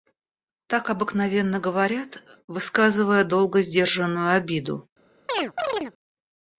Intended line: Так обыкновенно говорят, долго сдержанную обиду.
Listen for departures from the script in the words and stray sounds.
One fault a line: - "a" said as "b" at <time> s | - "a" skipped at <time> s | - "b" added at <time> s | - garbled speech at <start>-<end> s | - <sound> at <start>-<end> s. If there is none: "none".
- "высказывая" added at 2.5 s
- chirp at 5.3-5.9 s